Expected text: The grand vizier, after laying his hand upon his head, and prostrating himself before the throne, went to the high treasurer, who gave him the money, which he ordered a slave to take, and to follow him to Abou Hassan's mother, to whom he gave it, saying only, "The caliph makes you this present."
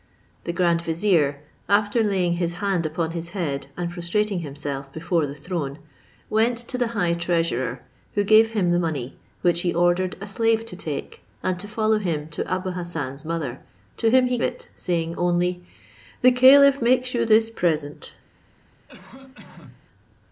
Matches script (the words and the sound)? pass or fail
fail